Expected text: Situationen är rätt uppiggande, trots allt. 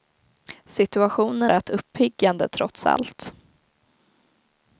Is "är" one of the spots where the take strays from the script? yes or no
yes